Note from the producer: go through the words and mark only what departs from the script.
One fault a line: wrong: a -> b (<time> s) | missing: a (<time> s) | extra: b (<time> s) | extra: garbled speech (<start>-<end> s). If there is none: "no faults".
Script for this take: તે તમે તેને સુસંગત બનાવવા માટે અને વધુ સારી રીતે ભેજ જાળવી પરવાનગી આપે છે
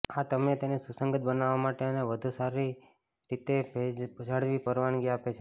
wrong: તે -> આ (0.1 s)